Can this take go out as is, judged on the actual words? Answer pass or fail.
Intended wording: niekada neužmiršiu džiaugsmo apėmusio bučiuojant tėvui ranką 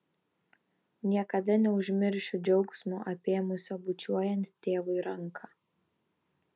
pass